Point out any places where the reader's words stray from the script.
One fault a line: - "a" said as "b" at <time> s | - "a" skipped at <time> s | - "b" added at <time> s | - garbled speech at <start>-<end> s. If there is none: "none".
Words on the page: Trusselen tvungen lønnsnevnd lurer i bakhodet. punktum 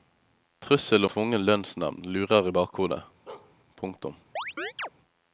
none